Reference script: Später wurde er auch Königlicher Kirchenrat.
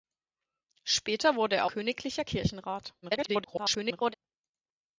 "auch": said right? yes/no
no